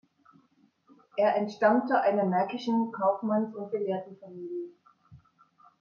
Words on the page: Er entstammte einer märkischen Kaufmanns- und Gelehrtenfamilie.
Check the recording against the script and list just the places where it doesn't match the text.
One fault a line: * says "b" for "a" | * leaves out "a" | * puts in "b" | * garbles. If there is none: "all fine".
all fine